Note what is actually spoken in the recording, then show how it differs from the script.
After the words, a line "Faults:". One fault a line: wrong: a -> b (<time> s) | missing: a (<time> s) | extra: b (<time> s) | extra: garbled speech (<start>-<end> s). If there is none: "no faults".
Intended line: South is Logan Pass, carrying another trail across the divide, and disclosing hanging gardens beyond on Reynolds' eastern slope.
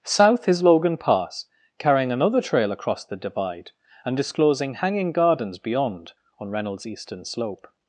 South is Logan Pass, carrying another trail across the divide, and disclosing hanging gardens beyond on Reynolds' eastern slope.
Faults:
no faults